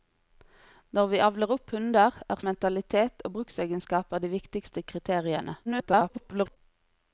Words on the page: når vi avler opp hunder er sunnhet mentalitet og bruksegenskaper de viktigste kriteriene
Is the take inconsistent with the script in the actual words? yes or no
yes